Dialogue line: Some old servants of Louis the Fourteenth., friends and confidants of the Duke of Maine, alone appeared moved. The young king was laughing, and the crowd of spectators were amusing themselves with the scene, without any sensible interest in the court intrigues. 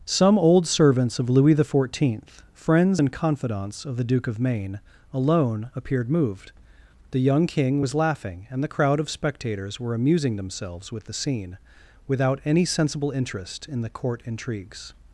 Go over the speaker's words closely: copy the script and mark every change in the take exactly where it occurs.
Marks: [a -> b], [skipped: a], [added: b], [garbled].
Some old servants of Louis the Fourteenth., friends and confidants of the Duke of Maine, alone appeared moved. The young king was laughing, and the crowd of spectators were amusing themselves with the scene, without any sensible interest in the court intrigues.